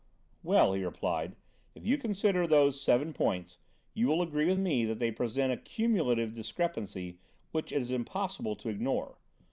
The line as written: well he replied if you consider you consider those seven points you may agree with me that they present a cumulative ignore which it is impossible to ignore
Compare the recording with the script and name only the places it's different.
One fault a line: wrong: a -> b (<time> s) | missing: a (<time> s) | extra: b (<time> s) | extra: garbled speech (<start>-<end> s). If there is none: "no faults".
missing: you consider (2.5 s)
wrong: may -> will (4.1 s)
wrong: ignore -> discrepancy (6.3 s)